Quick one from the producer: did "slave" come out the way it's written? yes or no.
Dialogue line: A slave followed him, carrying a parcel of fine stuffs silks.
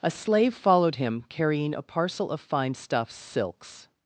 yes